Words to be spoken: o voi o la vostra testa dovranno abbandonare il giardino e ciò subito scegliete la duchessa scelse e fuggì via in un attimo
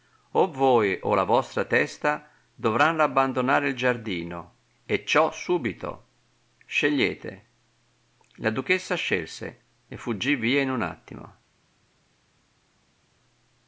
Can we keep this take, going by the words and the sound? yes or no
yes